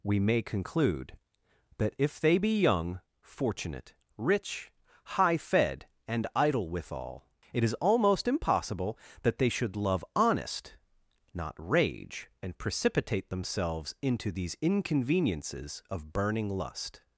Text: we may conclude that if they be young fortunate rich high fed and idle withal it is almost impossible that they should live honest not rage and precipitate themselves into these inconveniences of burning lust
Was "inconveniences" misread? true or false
false